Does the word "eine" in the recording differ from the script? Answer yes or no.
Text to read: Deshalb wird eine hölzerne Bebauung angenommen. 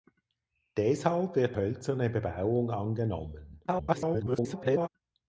yes